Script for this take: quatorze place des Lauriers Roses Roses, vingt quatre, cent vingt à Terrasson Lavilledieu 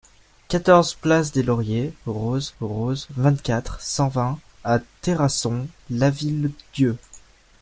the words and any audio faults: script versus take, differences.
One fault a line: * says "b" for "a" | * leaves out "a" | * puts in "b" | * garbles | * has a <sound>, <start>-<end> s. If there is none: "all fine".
all fine